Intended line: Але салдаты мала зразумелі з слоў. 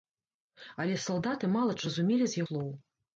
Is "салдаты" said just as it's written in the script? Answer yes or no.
yes